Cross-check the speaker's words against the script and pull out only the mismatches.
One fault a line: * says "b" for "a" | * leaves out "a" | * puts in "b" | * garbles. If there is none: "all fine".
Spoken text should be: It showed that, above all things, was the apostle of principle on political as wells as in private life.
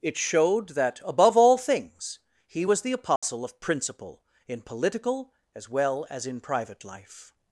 * puts in "he"
* says "in" for "on"
* says "well" for "wells"